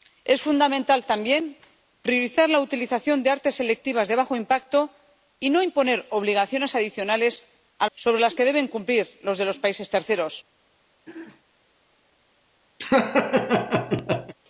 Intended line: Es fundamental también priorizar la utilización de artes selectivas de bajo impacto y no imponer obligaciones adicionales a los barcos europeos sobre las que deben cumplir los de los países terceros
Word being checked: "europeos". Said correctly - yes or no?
no